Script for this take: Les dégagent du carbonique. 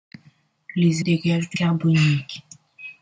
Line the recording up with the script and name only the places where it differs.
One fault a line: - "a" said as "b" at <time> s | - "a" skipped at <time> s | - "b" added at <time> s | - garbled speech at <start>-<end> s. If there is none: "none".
none